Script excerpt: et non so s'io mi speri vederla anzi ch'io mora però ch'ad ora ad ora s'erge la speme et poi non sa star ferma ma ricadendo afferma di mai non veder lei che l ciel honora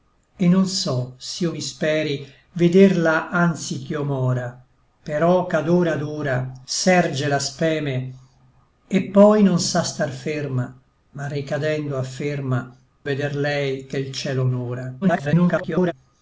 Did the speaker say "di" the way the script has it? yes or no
no